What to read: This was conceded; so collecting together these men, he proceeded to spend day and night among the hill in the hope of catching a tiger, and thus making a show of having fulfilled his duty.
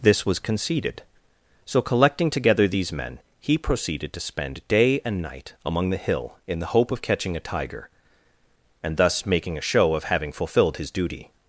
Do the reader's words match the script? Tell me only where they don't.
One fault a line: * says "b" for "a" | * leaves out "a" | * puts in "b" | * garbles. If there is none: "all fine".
all fine